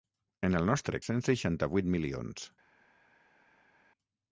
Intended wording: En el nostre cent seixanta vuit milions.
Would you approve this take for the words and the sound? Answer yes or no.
yes